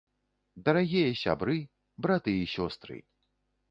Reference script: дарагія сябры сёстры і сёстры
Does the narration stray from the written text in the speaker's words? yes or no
yes